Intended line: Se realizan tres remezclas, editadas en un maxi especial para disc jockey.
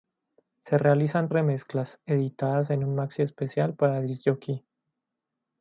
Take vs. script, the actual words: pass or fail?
fail